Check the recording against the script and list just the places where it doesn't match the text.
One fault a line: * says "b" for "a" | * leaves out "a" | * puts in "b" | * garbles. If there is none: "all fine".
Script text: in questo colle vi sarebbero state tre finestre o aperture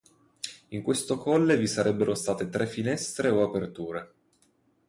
all fine